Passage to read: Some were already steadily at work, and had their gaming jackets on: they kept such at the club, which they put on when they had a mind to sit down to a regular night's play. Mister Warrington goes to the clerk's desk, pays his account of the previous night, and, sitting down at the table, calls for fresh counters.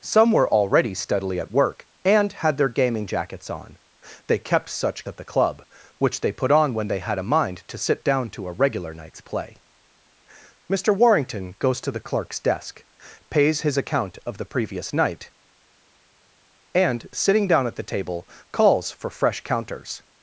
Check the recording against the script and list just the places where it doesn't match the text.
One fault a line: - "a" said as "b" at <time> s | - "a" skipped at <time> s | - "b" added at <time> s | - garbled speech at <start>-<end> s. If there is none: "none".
none